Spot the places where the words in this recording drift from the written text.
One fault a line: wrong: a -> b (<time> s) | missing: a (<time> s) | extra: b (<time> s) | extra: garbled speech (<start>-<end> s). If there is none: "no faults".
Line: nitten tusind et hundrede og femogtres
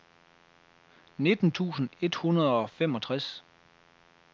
no faults